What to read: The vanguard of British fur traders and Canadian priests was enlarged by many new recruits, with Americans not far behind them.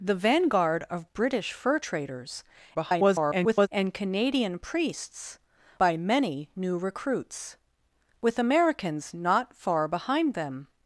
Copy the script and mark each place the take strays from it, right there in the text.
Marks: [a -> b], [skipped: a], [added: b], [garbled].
The vanguard of British fur traders [garbled] and Canadian priests [skipped: was enlarged] by many new recruits, with Americans not far behind them.